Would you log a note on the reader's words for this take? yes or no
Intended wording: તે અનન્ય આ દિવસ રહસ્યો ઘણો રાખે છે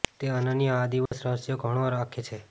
no